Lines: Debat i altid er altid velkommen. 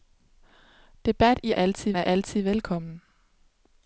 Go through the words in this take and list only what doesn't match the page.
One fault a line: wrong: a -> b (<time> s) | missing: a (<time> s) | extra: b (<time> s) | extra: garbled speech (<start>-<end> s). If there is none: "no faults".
no faults